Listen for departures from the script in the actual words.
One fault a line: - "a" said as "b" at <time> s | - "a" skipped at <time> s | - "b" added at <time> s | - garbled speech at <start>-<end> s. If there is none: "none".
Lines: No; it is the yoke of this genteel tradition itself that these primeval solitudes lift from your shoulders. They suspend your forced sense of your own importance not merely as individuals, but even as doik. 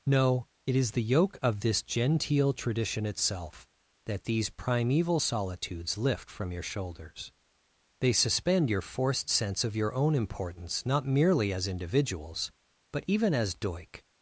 none